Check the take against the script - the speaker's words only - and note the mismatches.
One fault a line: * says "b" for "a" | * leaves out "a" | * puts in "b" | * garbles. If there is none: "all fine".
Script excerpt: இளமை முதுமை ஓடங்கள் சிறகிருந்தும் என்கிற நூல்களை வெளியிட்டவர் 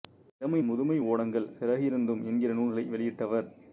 all fine